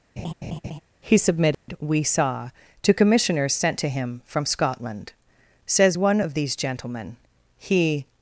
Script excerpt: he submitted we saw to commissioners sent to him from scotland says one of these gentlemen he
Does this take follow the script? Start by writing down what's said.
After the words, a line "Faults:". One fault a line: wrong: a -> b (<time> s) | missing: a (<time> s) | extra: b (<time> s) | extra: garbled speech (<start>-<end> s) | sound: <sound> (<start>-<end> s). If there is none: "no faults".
he submitted we saw to commissioners sent to him from scotland says one of these gentlemen he
Faults:
sound: laugh (0.2-0.8 s)
sound: dropout (1.5-1.7 s)